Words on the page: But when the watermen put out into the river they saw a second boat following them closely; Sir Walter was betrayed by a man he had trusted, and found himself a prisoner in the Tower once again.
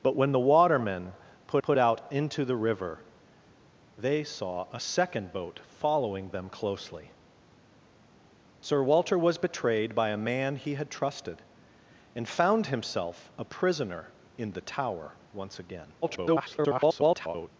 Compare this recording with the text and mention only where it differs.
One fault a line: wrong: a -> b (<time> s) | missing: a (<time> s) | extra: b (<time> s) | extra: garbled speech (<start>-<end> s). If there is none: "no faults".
extra: put (1.6 s)
extra: garbled speech (16.0-17.5 s)